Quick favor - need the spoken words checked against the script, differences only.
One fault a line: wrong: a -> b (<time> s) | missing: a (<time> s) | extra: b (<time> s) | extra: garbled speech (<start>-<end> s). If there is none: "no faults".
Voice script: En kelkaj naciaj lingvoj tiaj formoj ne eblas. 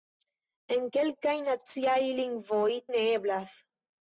missing: tiaj formoj (2.7 s)